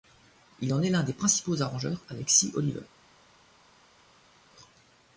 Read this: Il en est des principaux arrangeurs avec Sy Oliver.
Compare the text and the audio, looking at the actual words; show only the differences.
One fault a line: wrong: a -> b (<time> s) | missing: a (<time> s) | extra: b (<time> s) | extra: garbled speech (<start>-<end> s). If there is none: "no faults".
extra: l'un (0.9 s)